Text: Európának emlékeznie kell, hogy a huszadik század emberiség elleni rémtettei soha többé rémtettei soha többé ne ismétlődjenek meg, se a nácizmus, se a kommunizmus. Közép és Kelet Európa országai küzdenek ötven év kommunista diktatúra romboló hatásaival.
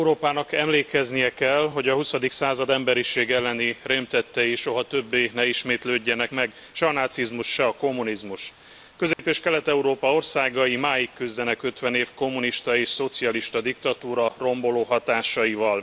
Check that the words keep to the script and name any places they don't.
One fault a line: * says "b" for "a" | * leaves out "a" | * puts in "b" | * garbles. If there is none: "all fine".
* leaves out "rémtettei soha többé"
* puts in "máig"
* puts in "és szocialista"